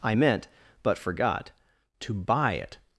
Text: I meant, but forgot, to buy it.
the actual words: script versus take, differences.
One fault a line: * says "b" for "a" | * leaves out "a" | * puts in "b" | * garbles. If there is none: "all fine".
all fine